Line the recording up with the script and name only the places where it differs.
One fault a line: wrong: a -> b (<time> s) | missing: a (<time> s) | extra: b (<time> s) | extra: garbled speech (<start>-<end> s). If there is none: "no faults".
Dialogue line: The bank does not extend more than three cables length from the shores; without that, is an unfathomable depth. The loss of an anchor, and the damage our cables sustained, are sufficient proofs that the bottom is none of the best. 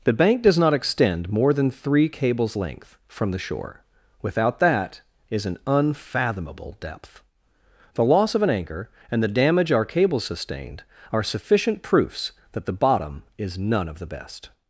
wrong: shores -> shore (3.4 s)